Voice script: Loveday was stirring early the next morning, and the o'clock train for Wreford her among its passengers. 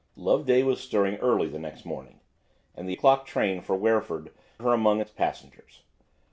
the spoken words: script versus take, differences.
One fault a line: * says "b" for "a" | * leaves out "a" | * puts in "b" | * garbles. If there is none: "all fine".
all fine